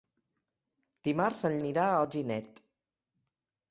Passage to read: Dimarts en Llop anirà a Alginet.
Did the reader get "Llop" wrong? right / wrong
wrong